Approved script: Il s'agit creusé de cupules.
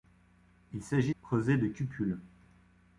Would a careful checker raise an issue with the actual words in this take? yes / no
no